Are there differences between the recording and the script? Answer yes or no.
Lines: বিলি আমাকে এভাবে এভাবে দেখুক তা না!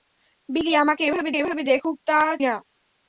no